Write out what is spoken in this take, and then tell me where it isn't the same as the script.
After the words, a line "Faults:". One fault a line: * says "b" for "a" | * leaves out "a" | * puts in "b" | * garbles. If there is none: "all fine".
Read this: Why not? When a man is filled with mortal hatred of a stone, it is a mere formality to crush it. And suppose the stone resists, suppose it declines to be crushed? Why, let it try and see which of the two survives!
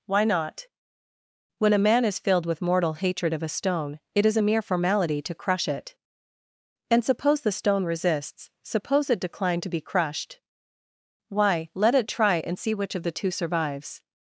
Why not? When a man is filled with mortal hatred of a stone, it is a mere formality to crush it. And suppose the stone resists, suppose it decline to be crushed? Why, let it try and see which of the two survives!
Faults:
* says "decline" for "declines"